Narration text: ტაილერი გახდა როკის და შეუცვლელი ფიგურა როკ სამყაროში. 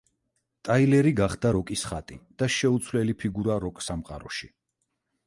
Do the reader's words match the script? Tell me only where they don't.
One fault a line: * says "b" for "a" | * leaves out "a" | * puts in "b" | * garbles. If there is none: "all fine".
* puts in "ხატი"